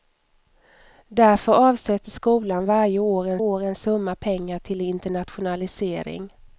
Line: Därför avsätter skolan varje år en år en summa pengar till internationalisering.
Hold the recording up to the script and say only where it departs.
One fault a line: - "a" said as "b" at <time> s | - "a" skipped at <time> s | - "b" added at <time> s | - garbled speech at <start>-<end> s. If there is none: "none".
none